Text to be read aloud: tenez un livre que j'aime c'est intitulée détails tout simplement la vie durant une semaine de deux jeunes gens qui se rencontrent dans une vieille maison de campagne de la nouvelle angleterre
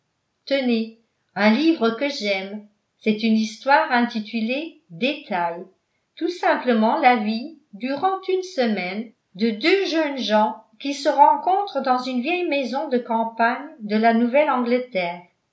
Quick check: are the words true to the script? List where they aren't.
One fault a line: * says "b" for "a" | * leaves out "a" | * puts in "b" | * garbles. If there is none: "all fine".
* puts in "une histoire"